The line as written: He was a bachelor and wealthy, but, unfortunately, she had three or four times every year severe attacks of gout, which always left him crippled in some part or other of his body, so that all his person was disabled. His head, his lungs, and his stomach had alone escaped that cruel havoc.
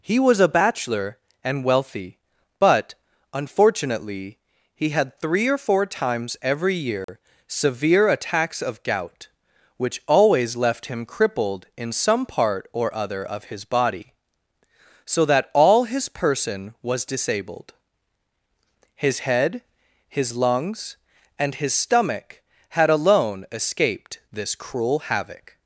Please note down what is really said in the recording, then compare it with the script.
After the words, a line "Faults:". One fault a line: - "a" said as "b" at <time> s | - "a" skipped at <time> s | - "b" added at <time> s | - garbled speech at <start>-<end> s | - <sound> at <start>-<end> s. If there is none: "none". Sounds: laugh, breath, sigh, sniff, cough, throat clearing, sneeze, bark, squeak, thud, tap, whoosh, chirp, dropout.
He was a bachelor and wealthy, but, unfortunately, he had three or four times every year severe attacks of gout, which always left him crippled in some part or other of his body, so that all his person was disabled. His head, his lungs, and his stomach had alone escaped this cruel havoc.
Faults:
- "she" said as "he" at 4.8 s
- dropout at 7.0-7.1 s
- "that" said as "this" at 24.3 s